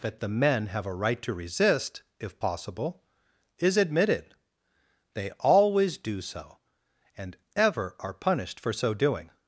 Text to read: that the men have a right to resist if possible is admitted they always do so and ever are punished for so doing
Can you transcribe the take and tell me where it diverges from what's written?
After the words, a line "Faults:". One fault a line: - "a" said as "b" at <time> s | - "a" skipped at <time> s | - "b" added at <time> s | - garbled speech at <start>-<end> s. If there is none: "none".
that the men have a right to resist if possible is admitted they always do so and ever are punished for so doing
Faults:
none